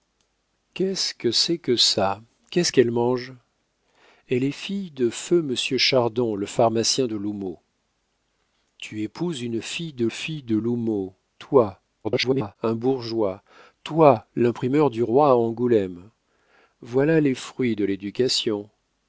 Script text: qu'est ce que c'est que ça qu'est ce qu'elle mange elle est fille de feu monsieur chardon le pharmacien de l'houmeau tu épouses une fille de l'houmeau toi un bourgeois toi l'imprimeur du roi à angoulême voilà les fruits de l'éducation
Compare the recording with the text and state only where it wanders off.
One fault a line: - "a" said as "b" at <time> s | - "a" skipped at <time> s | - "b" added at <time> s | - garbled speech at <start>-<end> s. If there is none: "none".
- "fille de" added at 10.1 s
- garbled speech at 12.0-12.6 s